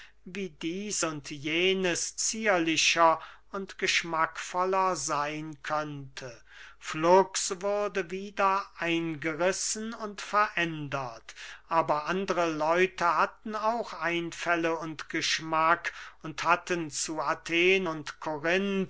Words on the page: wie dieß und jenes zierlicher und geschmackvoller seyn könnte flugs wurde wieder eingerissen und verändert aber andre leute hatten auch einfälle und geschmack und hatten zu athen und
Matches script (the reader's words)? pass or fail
pass